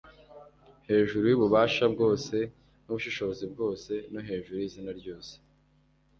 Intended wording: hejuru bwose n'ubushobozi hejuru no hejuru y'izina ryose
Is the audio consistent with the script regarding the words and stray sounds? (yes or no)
no